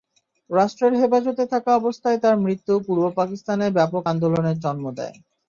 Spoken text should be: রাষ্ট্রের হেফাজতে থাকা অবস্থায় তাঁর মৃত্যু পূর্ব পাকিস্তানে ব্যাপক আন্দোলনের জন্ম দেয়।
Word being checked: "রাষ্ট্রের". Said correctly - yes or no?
yes